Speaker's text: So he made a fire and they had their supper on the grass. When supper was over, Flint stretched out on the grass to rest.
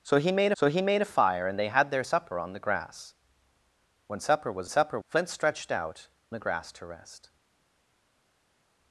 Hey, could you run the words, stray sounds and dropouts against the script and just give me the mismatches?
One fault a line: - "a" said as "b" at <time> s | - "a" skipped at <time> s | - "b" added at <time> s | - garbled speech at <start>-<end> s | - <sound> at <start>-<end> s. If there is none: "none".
- "so he made" added at 0.5 s
- "over" said as "supper" at 4.7 s
- "on" skipped at 6.1 s